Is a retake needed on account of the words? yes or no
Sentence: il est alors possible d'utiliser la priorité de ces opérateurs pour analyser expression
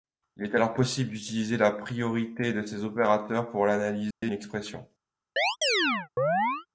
no